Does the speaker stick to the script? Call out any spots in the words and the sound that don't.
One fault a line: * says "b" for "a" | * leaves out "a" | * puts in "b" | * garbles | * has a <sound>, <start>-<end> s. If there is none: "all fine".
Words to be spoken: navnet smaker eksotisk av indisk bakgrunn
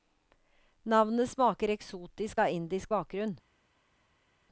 all fine